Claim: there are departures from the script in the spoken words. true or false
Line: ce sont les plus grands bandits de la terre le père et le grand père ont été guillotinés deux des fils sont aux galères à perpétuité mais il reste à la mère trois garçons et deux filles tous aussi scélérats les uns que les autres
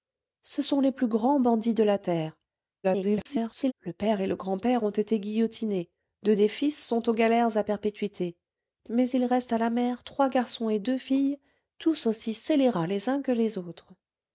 true